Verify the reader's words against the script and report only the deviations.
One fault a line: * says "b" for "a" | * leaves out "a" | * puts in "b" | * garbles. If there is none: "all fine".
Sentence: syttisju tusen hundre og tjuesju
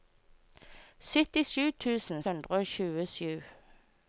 all fine